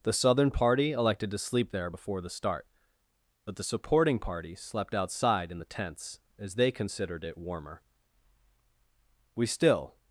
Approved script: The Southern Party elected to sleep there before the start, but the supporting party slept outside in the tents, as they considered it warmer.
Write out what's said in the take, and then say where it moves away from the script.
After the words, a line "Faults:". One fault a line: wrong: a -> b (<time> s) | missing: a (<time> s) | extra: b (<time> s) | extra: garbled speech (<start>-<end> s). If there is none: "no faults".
The Southern Party elected to sleep there before the start, but the supporting party slept outside in the tents, as they considered it warmer. We still
Faults:
extra: We still (9.3 s)